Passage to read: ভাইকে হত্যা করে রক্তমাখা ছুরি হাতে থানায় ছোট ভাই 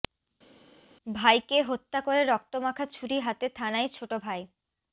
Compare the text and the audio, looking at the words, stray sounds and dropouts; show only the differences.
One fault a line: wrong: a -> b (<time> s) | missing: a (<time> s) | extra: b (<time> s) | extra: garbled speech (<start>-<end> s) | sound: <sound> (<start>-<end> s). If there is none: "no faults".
no faults